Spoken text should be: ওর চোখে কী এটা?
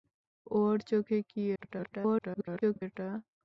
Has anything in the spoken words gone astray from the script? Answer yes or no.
yes